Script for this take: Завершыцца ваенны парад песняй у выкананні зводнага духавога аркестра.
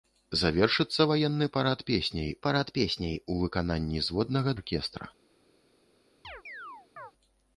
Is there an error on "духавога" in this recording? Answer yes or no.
yes